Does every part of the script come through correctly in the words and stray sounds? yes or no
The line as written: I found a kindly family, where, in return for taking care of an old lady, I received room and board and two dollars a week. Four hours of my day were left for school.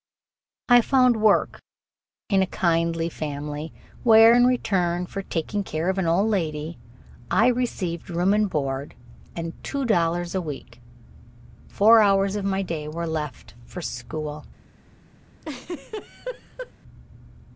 no